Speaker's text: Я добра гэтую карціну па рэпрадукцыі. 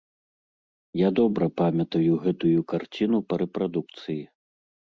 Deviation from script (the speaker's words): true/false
true